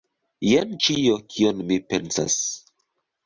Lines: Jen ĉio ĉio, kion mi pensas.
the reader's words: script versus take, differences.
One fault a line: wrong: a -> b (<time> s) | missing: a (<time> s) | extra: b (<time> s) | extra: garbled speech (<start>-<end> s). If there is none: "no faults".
missing: ĉio (1.2 s)